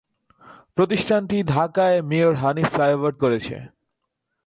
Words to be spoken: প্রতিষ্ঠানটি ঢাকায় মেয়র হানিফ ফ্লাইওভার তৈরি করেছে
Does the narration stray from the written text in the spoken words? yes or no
yes